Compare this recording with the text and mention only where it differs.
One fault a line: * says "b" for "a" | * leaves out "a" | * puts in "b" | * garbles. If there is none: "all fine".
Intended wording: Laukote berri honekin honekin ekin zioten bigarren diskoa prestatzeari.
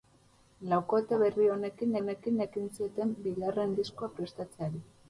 all fine